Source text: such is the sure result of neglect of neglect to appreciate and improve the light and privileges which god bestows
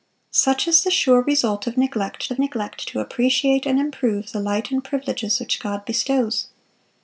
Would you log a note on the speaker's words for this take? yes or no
no